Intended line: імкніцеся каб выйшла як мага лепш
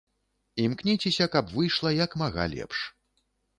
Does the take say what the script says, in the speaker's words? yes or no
yes